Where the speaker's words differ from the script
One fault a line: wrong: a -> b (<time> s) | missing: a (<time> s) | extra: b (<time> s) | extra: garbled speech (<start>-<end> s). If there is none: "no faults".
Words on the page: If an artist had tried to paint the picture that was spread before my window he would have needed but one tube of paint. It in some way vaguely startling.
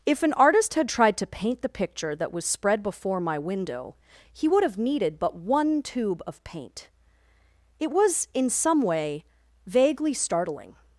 extra: was (7.9 s)